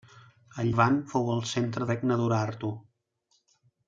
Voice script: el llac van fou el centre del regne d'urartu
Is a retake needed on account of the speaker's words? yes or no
yes